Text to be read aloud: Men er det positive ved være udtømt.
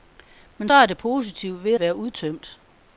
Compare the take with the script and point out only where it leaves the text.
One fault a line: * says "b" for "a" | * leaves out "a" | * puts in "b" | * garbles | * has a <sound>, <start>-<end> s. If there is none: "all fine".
all fine